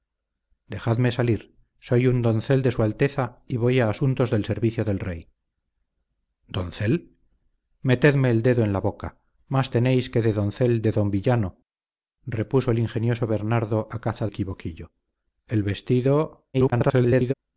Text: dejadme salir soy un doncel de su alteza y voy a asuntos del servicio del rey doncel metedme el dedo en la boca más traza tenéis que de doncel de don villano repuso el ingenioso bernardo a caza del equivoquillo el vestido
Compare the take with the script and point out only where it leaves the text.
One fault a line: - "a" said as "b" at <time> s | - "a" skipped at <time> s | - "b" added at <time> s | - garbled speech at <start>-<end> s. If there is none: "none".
- "traza" skipped at 9.7 s
- "del" skipped at 14.3 s
- garbled speech at 16.5-17.3 s